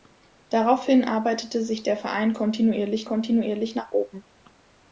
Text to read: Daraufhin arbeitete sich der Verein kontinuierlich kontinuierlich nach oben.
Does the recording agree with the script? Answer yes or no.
yes